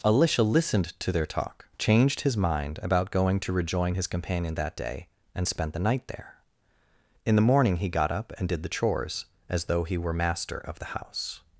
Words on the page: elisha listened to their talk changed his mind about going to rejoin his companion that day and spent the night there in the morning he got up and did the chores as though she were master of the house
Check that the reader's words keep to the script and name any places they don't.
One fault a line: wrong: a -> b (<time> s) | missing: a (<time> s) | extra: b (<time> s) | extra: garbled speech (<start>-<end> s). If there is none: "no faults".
wrong: she -> he (9.8 s)